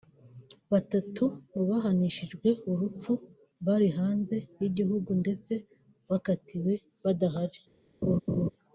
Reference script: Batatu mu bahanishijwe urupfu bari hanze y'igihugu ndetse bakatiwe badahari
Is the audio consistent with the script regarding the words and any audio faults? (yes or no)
no